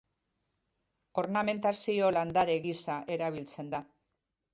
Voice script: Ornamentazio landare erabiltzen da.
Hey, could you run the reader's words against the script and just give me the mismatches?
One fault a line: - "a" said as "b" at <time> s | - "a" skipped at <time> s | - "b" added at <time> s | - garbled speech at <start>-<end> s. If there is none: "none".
- "gisa" added at 2.7 s